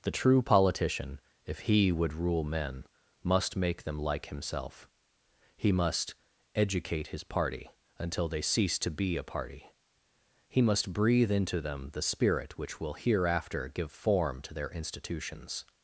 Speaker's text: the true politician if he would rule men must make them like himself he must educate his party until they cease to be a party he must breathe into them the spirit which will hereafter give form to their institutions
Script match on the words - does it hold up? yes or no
yes